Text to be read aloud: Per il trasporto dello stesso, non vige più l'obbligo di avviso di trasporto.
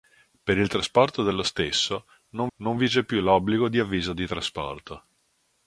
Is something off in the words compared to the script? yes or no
yes